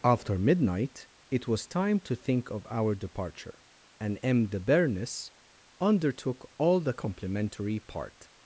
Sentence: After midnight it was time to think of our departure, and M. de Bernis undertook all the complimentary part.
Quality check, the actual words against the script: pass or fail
pass